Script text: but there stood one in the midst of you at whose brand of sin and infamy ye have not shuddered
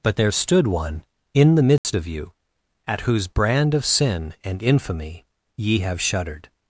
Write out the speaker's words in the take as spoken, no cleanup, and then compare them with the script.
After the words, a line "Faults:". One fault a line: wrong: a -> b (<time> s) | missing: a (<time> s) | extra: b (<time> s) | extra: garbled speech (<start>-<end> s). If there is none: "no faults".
but there stood one in the midst of you at whose brand of sin and infamy ye have shuddered
Faults:
missing: not (6.0 s)